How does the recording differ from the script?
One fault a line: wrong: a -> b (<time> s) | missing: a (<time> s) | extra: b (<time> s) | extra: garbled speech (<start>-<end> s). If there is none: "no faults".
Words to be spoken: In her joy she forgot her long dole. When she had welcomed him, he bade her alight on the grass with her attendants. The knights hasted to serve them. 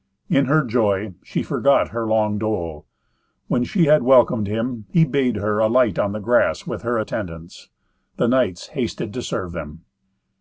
no faults